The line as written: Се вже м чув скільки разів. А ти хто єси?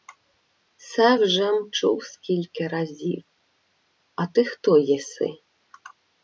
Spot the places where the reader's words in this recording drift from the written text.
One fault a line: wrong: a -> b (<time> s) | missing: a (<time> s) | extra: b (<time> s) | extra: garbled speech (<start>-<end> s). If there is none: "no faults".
no faults